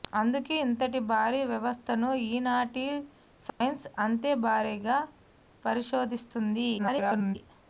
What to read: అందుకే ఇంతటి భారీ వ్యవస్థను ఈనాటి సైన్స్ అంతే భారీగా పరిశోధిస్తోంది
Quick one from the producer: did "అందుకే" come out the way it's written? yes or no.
yes